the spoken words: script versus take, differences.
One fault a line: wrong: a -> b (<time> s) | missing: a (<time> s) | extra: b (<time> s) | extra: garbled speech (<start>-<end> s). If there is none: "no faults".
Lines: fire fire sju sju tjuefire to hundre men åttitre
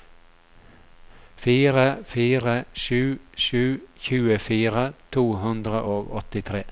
wrong: men -> og (5.9 s)